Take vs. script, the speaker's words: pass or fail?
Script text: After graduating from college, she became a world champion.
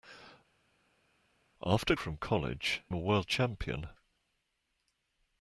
fail